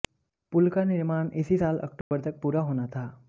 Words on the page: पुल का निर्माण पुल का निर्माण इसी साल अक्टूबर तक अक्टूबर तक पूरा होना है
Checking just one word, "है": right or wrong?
wrong